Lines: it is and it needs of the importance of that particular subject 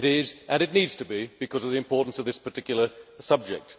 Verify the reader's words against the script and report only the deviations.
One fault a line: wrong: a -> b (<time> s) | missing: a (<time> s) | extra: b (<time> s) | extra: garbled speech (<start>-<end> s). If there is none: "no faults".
extra: to be because (0.9 s)
wrong: that -> this (2.2 s)